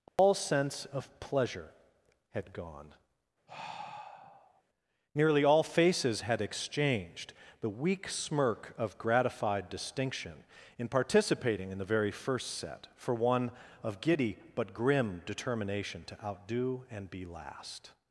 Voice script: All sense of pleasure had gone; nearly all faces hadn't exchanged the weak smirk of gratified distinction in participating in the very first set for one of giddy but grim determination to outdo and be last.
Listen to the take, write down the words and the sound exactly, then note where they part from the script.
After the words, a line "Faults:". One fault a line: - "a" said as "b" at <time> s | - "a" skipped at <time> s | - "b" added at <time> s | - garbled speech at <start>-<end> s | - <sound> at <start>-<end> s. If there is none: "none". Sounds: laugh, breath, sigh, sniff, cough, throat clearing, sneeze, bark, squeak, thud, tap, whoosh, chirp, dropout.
All sense of pleasure had gone; nearly all faces had exchanged the weak smirk of gratified distinction in participating in the very first set for one of giddy but grim determination to outdo and be last.
Faults:
- dropout at 0.1-0.2 s
- sigh at 3.5-4.6 s
- "hadn't" said as "had" at 6.2 s